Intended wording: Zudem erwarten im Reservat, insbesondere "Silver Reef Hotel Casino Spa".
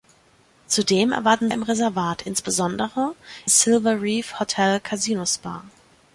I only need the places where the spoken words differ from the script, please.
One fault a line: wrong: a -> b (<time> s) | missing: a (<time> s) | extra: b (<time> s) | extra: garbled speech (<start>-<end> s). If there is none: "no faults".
no faults